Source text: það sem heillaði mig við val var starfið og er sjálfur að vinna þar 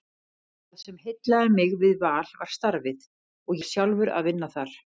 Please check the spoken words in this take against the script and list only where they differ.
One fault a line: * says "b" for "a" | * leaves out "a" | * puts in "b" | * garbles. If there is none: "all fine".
all fine